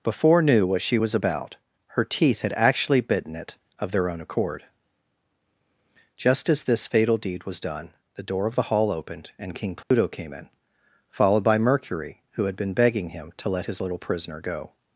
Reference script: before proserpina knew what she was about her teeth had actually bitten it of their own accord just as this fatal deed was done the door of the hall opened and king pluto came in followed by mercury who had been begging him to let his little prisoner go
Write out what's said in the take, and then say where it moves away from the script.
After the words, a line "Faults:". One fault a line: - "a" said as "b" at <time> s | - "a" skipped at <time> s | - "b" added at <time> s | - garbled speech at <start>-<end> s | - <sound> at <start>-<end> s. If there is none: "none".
before knew what she was about her teeth had actually bitten it of their own accord just as this fatal deed was done the door of the hall opened and king pluto came in followed by mercury who had been begging him to let his little prisoner go
Faults:
- "proserpina" skipped at 0.4 s
- dropout at 9.8-9.9 s